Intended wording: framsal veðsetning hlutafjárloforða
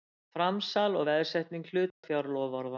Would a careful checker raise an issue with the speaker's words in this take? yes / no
yes